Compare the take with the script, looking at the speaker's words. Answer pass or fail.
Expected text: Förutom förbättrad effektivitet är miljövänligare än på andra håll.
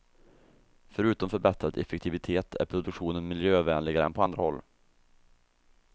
fail